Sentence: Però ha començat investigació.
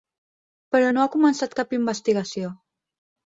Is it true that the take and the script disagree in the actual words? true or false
true